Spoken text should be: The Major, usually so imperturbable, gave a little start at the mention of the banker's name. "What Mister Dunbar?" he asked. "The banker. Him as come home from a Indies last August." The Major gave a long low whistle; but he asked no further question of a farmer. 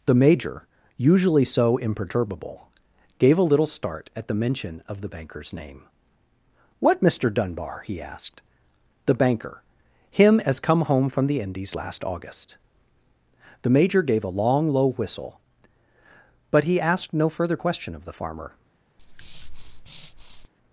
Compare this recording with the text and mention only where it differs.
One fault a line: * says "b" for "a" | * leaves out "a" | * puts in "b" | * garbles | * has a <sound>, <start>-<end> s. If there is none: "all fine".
* says "the" for "a"
* says "the" for "a"
* has a breath, 19.0-20.5 s